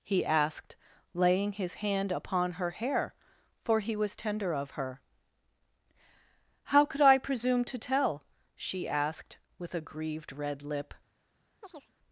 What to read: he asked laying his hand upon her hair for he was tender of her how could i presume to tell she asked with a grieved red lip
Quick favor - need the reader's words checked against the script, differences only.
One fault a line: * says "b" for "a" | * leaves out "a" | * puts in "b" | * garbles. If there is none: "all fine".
all fine